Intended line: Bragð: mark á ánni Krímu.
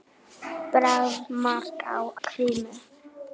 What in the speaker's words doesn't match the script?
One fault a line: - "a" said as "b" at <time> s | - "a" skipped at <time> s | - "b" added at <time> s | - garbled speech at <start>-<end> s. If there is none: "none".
- "ánni" skipped at 2.0 s